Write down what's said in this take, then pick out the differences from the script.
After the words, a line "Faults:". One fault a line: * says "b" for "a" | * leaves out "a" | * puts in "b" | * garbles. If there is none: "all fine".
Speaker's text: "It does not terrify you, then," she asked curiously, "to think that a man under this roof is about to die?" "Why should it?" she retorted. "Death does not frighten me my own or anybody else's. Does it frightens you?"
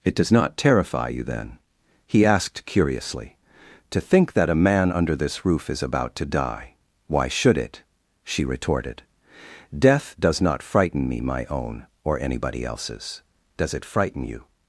"It does not terrify you, then," he asked curiously, "to think that a man under this roof is about to die?" "Why should it?" she retorted. "Death does not frighten me my own or anybody else's. Does it frighten you?"
Faults:
* says "he" for "she"
* says "frighten" for "frightens"